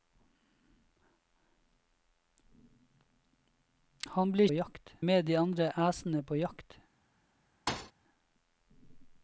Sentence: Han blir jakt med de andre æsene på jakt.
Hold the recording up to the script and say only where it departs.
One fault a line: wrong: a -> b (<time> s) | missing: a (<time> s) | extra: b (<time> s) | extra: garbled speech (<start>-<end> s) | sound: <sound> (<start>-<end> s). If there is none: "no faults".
sound: thud (7.7-7.9 s)